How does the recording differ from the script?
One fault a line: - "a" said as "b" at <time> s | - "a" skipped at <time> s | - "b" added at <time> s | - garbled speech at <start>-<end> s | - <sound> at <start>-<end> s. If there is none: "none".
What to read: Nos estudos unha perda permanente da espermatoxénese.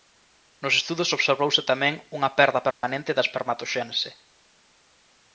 - "observouse tamén" added at 1.2 s
- dropout at 2.7-2.8 s